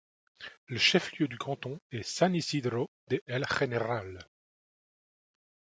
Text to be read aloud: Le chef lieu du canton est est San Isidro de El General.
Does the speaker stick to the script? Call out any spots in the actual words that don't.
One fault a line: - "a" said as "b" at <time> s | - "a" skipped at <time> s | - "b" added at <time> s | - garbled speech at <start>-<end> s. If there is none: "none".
- "est" skipped at 2.0 s